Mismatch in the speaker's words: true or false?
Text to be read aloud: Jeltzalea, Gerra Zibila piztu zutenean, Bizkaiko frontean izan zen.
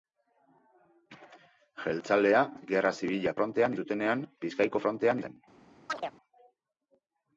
true